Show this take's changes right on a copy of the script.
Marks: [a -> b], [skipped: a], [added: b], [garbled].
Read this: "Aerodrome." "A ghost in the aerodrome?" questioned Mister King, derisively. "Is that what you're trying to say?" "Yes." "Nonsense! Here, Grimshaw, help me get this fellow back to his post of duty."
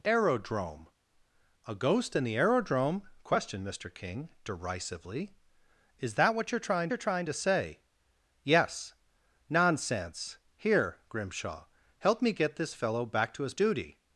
"Aerodrome." "A ghost in the aerodrome?" questioned Mister King, derisively. "Is that what you're trying [added: you're trying] to say?" "Yes." "Nonsense! Here, Grimshaw, help me get this fellow back to his [skipped: post of] duty."